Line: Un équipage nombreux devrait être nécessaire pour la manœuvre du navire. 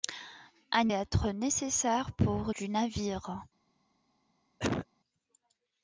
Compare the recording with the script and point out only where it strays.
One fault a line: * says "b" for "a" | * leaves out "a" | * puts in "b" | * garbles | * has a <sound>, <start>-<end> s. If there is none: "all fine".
* leaves out "équipage nombreux devrait"
* leaves out "la manœuvre"
* has a cough, 4.6-4.9 s